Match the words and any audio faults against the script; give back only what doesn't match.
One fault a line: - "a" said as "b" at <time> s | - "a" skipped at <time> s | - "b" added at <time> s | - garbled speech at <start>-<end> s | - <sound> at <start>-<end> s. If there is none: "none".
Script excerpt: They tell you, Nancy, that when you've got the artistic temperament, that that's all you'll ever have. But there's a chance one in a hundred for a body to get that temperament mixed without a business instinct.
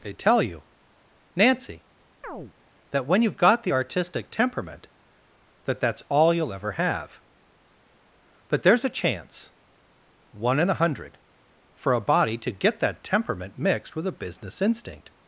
- chirp at 2.2-2.5 s
- "without" said as "with" at 14.0 s